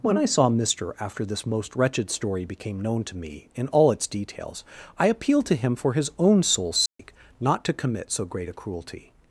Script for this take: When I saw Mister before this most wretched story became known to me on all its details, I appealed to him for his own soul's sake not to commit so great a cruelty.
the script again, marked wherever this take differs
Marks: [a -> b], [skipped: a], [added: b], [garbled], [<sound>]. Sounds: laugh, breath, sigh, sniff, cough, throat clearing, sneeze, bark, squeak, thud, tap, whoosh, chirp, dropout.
When I saw Mister [before -> after] this most wretched story became known to me [on -> in] all its details, I appealed to him for his own soul's sake [dropout] not to commit so great a cruelty.